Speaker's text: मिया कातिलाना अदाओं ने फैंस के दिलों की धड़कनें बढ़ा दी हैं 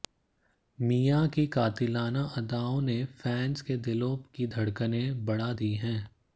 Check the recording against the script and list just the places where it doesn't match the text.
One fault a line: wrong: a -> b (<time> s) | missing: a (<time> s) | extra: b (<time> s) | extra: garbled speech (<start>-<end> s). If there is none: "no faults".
extra: की (1.3 s)